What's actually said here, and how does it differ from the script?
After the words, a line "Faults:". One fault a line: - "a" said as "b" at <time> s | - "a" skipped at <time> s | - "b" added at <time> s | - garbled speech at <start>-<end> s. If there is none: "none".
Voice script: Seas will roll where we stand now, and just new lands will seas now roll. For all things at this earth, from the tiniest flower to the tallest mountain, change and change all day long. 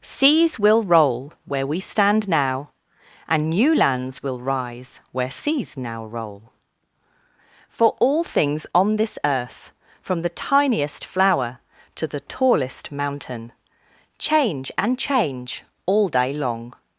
Seas will roll where we stand now, and new lands will rise where seas now roll. For all things on this earth, from the tiniest flower to the tallest mountain, change and change all day long.
Faults:
- "just" skipped at 3.5 s
- "rise where" added at 4.4 s
- "at" said as "on" at 8.7 s